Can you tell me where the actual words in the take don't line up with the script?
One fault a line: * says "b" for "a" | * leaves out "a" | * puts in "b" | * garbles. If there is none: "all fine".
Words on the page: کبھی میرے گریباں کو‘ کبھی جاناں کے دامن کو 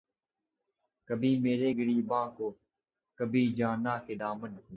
all fine